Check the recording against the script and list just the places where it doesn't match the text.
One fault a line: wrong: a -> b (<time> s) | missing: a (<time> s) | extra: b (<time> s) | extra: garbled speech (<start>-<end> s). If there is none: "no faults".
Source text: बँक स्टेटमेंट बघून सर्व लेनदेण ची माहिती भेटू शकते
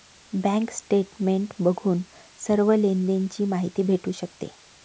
no faults